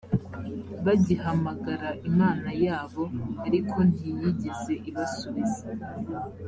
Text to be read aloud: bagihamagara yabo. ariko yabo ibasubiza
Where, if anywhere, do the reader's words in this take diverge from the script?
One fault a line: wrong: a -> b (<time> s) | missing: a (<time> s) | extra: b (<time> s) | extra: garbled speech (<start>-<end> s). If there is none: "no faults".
extra: imana (2.1 s)
wrong: yabo -> ntiyigeze (3.9 s)